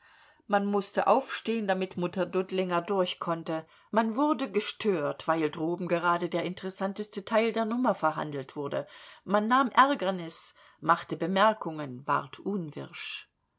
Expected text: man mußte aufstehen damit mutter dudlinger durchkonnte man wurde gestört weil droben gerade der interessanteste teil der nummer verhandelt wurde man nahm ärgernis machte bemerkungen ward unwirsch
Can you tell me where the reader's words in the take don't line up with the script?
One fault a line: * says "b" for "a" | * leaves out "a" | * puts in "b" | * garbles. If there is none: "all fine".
all fine